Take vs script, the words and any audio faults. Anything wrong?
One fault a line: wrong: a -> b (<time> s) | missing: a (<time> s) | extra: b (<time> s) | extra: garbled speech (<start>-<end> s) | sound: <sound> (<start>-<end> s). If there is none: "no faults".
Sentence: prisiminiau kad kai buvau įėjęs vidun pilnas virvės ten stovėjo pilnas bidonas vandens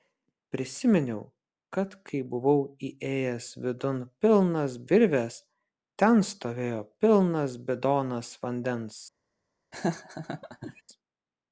sound: laugh (9.7-10.8 s)